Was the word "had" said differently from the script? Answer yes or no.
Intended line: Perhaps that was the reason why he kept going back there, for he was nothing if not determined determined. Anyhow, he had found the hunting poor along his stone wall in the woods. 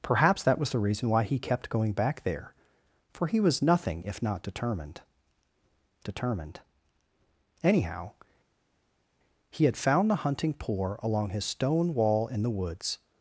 no